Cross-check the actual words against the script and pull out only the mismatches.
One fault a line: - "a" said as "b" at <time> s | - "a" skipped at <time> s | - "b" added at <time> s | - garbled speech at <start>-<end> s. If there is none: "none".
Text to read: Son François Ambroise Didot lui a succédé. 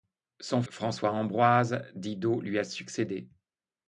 none